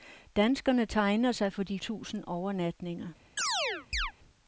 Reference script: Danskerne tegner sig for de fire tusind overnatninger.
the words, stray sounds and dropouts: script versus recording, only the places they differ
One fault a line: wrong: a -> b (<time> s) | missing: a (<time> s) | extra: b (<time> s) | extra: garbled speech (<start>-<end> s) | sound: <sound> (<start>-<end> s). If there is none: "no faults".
missing: fire (1.8 s)
sound: chirp (3.4-4.1 s)